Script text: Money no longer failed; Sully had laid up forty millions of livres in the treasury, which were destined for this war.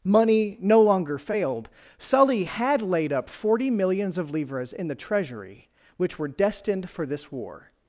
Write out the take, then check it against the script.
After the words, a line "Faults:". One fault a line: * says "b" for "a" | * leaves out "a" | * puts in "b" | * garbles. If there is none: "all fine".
Money no longer failed; Sully had laid up forty millions of livres in the treasury, which were destined for this war.
Faults:
all fine